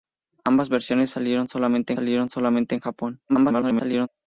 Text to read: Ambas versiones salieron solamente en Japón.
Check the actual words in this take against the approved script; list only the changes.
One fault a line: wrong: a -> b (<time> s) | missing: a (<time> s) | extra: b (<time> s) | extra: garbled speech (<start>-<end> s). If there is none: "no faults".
extra: salieron solamente (1.9 s)
extra: garbled speech (3.3-4.1 s)